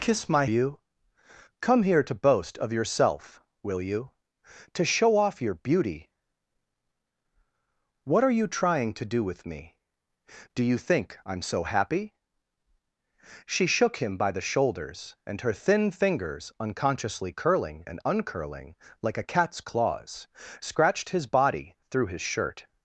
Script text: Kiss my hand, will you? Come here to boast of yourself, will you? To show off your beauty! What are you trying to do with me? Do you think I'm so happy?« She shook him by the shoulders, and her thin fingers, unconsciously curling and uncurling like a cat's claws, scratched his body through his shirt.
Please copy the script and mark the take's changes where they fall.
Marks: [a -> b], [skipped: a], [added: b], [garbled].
Kiss my [skipped: hand, will] you? Come here to boast of yourself, will you? To show off your beauty! What are you trying to do with me? Do you think I'm so happy?« She shook him by the shoulders, and her thin fingers, unconsciously curling and uncurling like a cat's claws, scratched his body through his shirt.